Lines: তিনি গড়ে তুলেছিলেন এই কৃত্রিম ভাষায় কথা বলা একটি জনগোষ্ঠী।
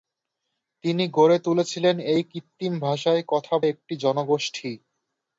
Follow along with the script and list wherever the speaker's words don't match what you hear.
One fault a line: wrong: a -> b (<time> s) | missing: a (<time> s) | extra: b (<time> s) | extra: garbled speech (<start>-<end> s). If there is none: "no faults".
missing: বলা (3.5 s)